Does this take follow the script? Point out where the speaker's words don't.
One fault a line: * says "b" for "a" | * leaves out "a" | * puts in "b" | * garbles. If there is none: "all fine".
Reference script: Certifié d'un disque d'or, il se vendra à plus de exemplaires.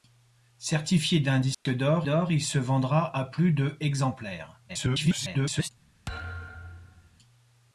* puts in "d'or"
* garbles